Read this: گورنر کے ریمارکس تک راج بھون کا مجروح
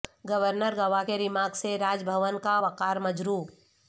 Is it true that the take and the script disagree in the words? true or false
true